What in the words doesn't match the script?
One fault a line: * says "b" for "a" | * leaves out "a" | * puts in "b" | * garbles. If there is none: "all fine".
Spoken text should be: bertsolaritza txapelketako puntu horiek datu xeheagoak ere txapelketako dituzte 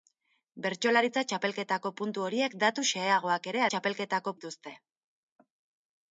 all fine